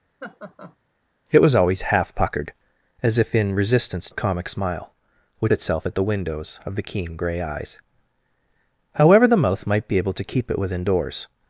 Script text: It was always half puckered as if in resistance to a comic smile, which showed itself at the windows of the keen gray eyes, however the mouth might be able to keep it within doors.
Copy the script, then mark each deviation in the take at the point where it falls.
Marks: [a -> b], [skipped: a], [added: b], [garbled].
It was always half puckered as if in resistance [skipped: to] a comic smile, which [skipped: showed] itself at the windows of the keen gray eyes, however the mouth might be able to keep it within doors.